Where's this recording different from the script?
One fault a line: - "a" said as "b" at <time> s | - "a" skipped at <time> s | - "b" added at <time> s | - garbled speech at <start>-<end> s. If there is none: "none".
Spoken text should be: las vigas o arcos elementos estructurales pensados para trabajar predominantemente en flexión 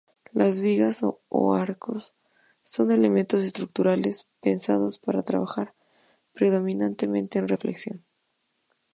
- "son" added at 2.6 s